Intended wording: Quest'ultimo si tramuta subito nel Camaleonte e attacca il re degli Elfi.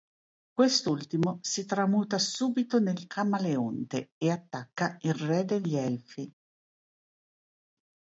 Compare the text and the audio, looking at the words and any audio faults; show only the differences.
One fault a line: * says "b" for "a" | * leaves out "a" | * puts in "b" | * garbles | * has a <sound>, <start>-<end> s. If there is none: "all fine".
all fine